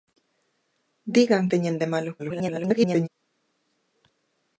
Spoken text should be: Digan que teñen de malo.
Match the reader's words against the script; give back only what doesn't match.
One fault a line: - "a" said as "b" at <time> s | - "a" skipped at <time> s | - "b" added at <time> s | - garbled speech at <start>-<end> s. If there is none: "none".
- "que" skipped at 1.4 s
- garbled speech at 2.2-3.1 s